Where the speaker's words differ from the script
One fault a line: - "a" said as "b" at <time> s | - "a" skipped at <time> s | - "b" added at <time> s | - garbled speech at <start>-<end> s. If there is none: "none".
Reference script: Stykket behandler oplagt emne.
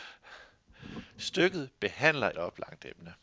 none